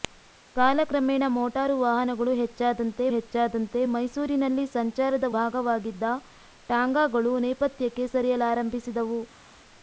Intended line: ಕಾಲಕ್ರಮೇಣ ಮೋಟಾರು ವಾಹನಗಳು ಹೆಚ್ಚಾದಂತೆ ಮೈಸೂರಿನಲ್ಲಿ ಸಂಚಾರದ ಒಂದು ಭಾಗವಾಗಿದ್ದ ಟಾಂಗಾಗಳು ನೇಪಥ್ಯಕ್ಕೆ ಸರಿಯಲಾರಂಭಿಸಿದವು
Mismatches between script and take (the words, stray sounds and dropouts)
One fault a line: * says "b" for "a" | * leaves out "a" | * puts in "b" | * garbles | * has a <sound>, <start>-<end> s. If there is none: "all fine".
* puts in "ಹೆಚ್ಚಾದಂತೆ"
* leaves out "ಒಂದು"